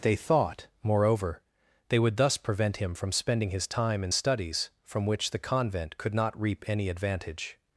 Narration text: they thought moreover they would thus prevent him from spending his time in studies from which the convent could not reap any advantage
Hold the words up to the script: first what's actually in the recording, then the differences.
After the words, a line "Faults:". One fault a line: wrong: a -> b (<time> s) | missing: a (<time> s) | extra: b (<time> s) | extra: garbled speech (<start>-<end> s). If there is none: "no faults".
they thought moreover they would thus prevent him from spending his time in studies from which the convent could not reap any advantage
Faults:
no faults